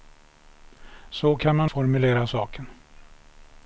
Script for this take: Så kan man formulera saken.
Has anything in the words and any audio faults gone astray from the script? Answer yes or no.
no